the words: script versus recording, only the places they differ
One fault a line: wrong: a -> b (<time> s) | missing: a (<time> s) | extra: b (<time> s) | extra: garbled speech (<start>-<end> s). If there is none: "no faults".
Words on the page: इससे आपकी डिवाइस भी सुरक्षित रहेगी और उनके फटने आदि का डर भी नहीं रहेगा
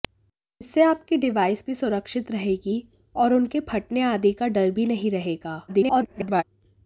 extra: garbled speech (5.7-6.4 s)